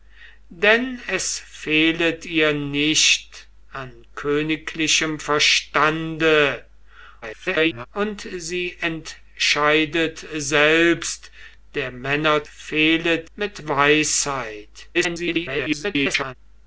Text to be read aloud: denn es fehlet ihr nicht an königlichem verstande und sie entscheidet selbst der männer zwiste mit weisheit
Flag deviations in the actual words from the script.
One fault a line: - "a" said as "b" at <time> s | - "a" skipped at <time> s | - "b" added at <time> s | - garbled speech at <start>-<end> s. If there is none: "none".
- garbled speech at 7.2-7.9 s
- "zwiste" said as "fehlet" at 12.4 s
- garbled speech at 14.9-16.3 s